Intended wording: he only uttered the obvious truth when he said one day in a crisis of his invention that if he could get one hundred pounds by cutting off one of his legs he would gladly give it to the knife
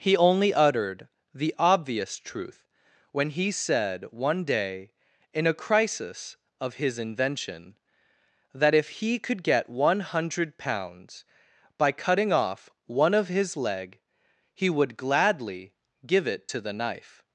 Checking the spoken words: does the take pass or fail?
fail